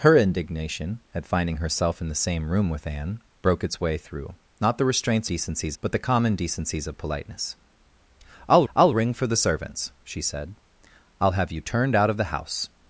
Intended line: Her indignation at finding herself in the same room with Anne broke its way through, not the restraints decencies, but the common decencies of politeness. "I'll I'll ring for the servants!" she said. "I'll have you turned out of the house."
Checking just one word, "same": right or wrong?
right